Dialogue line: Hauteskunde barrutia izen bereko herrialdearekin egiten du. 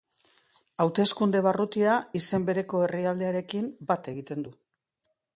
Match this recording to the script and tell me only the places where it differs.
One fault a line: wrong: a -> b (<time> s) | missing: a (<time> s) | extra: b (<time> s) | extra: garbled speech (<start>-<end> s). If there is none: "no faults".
extra: bat (3.9 s)